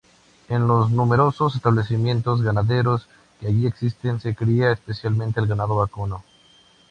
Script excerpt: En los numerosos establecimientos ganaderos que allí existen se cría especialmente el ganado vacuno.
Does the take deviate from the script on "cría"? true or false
false